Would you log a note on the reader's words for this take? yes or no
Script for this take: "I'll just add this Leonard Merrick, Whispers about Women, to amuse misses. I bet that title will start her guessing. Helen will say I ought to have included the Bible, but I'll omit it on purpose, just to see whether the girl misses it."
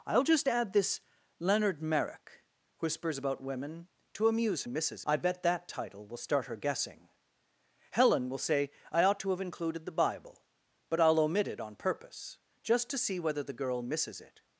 no